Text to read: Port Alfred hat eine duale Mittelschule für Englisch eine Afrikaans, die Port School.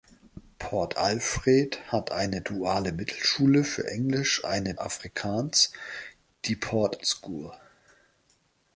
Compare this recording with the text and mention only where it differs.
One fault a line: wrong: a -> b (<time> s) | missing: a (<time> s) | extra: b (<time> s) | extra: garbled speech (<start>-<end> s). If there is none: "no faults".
no faults